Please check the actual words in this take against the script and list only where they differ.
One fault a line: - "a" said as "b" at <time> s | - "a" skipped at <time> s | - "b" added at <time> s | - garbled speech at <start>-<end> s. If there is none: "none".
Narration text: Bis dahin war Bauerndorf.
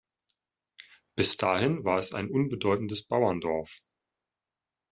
- "es ein unbedeutendes" added at 2.0 s